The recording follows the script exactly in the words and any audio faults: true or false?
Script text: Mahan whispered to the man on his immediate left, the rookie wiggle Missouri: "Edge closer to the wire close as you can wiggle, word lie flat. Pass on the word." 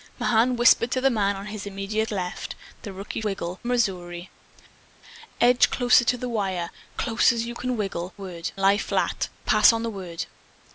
true